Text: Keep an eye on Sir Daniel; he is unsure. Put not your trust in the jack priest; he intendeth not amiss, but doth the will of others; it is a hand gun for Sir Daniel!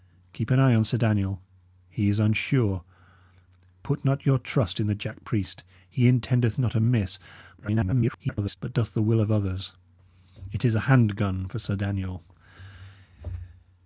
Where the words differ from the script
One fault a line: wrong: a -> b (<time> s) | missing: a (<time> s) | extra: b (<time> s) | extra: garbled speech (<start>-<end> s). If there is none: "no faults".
extra: garbled speech (7.6-8.6 s)